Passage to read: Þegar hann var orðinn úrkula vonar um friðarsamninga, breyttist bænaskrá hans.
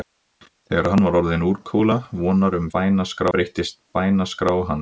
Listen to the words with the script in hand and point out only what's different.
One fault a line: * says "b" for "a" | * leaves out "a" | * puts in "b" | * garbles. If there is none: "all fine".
* says "bænaskrá" for "friðarsamninga"